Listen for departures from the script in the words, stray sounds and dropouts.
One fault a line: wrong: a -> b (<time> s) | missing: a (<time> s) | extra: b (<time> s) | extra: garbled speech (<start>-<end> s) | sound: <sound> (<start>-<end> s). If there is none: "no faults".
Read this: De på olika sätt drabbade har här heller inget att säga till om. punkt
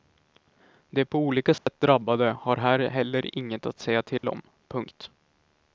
sound: dropout (1.6-1.7 s)
sound: dropout (4.2-4.2 s)